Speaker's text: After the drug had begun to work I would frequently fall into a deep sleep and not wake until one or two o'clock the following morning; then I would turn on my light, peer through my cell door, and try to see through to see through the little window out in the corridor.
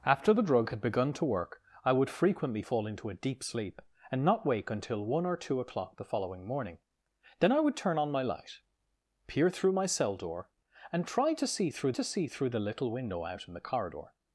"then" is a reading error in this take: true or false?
false